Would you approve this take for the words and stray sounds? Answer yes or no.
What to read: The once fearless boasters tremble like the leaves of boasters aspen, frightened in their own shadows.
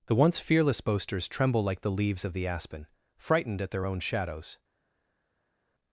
no